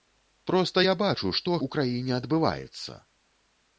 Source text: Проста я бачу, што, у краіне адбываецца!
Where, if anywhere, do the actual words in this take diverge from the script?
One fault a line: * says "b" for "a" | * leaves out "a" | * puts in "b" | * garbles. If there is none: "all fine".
all fine